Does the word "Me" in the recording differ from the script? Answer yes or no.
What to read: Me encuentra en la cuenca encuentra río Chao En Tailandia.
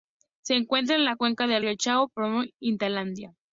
yes